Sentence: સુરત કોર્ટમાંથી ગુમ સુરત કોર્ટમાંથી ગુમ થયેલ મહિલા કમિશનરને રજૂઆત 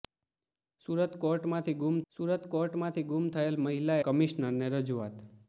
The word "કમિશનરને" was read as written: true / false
true